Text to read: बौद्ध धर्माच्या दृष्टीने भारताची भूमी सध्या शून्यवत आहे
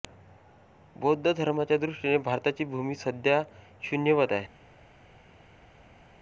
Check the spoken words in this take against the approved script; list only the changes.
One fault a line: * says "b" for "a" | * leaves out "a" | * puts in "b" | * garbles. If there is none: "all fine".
all fine